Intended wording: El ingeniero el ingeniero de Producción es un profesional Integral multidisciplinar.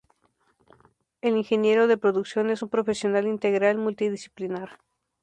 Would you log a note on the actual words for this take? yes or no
yes